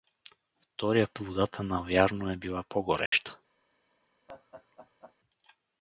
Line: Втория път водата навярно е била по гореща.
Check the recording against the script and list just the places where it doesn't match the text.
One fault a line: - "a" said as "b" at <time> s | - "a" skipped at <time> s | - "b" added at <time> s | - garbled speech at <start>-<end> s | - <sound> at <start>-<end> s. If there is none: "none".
- "път" skipped at 1.1 s
- dropout at 3.1-3.1 s
- laugh at 4.3-5.2 s